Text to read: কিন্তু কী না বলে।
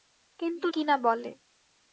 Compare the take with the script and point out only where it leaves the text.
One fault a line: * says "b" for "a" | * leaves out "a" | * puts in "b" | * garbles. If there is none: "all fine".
all fine